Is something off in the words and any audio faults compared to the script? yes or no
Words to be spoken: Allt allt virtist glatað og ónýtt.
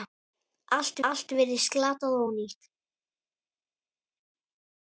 no